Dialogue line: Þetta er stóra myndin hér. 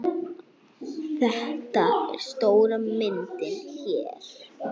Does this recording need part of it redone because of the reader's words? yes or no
no